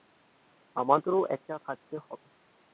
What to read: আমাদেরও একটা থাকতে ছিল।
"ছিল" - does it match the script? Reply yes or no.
no